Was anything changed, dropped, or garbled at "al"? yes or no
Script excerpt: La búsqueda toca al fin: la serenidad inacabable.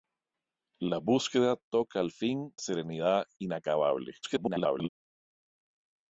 no